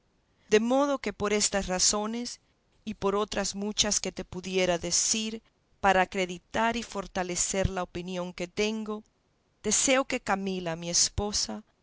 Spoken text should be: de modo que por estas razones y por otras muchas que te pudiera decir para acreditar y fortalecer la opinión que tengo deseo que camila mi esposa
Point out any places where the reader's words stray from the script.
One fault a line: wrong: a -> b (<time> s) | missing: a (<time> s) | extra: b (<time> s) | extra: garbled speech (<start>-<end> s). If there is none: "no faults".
no faults